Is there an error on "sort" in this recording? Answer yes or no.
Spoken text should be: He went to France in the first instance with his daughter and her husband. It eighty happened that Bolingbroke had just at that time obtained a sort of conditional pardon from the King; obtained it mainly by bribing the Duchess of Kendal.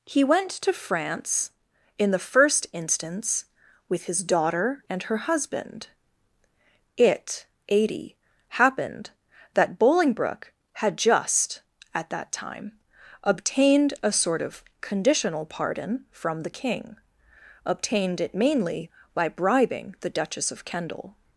no